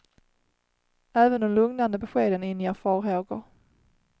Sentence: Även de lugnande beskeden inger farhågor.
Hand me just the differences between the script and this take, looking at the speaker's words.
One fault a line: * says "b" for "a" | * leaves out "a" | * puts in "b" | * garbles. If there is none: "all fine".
all fine